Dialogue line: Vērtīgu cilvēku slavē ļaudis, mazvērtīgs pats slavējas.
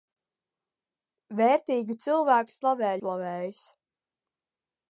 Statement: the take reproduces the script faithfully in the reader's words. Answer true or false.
false